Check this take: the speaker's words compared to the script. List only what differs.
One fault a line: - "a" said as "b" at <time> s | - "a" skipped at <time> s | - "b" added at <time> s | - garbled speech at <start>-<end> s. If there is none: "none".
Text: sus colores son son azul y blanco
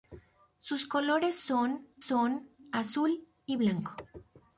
none